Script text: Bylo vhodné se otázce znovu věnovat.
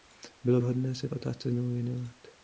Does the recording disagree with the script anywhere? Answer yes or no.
no